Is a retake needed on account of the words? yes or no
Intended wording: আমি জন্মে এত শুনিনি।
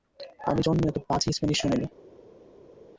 yes